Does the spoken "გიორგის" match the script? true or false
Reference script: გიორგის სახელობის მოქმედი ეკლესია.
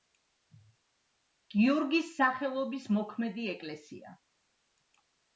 true